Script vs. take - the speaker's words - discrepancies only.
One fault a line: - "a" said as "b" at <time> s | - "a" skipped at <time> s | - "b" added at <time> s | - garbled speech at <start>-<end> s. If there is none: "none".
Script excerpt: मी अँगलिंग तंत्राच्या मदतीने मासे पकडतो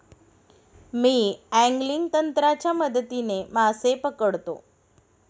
none